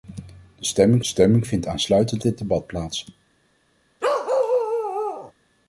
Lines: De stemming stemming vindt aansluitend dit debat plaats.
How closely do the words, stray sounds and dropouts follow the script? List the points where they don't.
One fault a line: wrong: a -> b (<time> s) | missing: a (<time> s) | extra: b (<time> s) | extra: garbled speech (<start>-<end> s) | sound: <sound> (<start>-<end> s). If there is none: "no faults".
sound: bark (4.0-5.3 s)